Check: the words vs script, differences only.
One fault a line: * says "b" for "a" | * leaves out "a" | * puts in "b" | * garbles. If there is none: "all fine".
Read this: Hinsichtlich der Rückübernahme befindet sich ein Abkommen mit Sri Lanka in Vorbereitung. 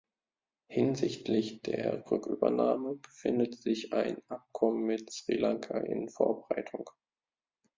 all fine